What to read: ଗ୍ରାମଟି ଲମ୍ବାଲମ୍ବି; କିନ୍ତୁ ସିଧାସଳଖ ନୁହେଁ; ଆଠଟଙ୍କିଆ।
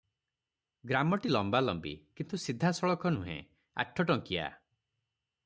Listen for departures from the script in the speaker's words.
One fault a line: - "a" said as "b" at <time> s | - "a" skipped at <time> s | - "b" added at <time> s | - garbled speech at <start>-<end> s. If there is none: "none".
none